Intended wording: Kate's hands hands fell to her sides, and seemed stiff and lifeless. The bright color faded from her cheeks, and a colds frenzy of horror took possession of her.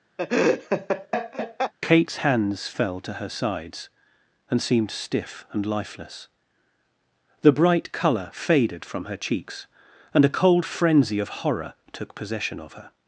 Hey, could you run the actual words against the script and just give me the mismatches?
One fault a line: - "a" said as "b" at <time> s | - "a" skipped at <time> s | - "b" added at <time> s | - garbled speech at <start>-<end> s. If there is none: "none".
- "hands" skipped at 2.7 s
- "colds" said as "cold" at 10.3 s